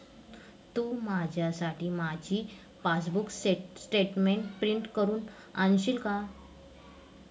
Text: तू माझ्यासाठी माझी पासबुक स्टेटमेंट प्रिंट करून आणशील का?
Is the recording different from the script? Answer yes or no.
no